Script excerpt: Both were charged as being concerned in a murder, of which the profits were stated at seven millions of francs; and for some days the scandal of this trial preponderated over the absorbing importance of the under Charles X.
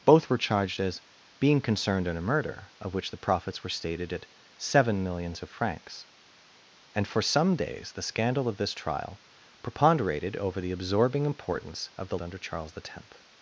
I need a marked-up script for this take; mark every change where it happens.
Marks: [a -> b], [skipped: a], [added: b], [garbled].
Both were charged as being concerned in a murder, of which the profits were stated at seven millions of francs; and for some days the scandal of this trial preponderated over the absorbing importance of the under Charles X.